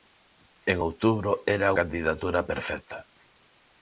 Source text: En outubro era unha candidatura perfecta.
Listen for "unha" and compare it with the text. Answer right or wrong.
wrong